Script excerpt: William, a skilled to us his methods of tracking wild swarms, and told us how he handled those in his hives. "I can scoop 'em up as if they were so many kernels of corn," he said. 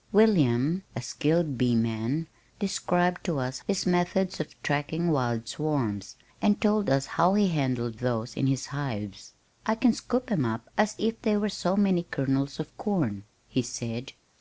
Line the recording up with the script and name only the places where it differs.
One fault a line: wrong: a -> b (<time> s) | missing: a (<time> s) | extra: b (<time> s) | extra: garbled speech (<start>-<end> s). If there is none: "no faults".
extra: bee man described (1.6 s)